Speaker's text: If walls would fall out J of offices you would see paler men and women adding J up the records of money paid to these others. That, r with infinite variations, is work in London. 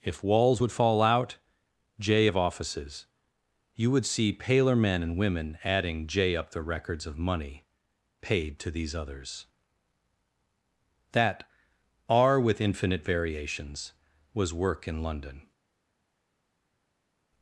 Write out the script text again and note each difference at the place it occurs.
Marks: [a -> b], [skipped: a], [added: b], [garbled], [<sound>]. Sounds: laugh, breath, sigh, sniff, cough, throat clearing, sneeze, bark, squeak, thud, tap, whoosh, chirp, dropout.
If walls would fall out J of offices you would see paler men and women adding J up the records of money paid to these others. That, r with infinite variations, [is -> was] work in London.